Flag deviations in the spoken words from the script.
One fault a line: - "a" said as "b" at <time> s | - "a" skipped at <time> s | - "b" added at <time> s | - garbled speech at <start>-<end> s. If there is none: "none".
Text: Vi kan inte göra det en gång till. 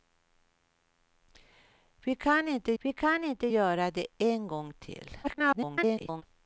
- "vi kan inte" added at 2.8 s
- garbled speech at 5.2-6.2 s